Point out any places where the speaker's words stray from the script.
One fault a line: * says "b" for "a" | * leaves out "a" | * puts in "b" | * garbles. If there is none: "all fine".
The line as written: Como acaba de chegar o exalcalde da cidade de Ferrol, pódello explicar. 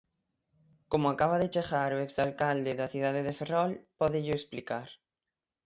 all fine